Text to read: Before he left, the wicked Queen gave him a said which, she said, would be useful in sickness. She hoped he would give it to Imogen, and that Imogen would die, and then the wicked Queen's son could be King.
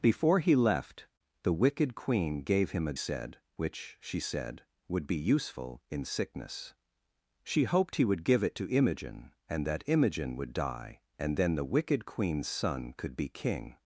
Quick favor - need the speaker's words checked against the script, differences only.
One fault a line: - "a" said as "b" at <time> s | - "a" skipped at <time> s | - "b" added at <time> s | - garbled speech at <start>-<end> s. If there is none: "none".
none